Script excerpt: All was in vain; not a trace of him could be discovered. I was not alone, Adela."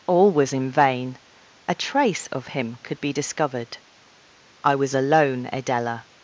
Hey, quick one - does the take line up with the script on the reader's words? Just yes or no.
no